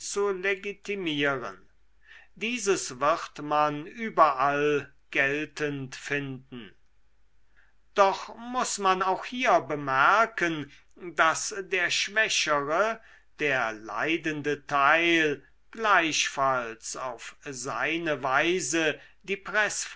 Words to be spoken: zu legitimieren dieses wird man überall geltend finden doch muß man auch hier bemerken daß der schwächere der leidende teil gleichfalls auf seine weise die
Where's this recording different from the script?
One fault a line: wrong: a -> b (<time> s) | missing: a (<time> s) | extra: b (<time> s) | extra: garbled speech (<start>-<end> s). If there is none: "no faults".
no faults